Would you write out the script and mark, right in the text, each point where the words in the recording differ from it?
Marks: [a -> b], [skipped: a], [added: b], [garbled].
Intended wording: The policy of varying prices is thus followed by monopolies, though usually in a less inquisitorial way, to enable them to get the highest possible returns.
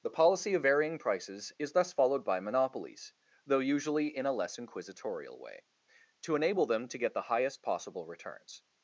The policy of varying prices is thus followed by monopolies, though usually in a less inquisitorial way, to enable them to get the highest possible returns.